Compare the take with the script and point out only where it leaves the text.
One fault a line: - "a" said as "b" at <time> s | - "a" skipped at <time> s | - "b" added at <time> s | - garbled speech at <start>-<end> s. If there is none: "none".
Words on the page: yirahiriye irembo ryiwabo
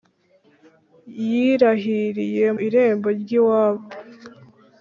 none